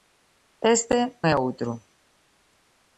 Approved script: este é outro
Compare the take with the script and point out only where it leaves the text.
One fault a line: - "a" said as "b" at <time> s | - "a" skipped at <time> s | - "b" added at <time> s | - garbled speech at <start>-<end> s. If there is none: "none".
none